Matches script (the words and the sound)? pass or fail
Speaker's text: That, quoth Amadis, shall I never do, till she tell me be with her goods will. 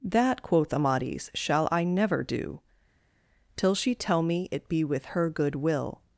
fail